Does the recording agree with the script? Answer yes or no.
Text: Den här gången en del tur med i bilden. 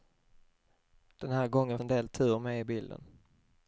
yes